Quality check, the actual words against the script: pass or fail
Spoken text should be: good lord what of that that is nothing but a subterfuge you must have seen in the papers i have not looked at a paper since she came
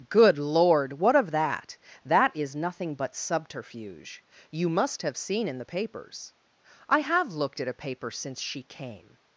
fail